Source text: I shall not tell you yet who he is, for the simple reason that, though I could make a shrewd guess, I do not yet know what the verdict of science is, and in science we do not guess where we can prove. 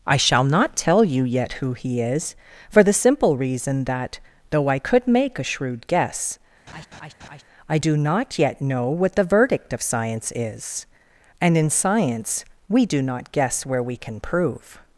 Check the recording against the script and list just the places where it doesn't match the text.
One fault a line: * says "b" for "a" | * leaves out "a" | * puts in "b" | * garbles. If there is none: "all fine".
all fine